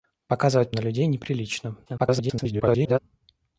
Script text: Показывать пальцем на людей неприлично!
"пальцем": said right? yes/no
no